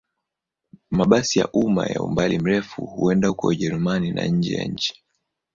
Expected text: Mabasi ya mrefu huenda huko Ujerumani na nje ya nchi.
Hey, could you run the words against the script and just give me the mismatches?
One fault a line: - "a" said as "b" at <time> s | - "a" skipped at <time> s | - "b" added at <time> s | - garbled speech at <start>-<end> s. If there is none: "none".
- "umma ya umbali" added at 1.5 s